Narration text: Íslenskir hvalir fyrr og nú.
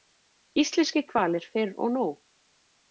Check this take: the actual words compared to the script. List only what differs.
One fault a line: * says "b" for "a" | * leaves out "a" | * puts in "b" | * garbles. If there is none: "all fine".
all fine